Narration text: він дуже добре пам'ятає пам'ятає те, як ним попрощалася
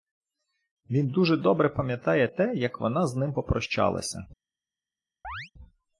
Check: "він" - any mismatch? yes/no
no